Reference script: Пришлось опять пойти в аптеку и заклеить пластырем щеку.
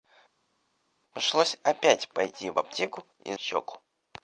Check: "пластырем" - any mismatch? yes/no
yes